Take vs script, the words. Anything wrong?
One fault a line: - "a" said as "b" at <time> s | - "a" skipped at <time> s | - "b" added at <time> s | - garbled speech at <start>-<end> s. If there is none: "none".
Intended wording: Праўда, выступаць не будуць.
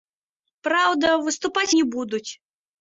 none